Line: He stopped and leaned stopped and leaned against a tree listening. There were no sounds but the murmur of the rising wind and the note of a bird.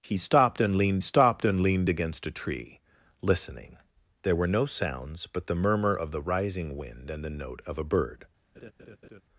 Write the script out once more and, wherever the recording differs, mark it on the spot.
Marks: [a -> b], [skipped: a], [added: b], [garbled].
He stopped and leaned stopped and leaned against a tree listening. There were no sounds but the murmur of the rising wind and the note of a bird.